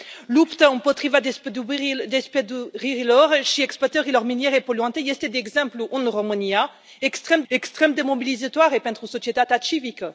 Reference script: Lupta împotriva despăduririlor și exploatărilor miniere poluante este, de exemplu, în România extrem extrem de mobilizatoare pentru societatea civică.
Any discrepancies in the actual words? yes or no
no